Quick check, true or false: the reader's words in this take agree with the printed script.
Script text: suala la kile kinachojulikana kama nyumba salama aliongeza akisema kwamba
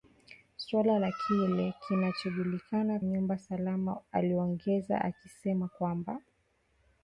false